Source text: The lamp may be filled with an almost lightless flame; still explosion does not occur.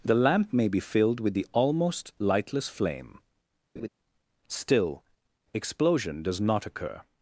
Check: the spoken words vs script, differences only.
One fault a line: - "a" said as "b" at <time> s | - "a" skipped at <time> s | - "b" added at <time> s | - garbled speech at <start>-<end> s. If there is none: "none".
- "an" said as "the" at 1.3 s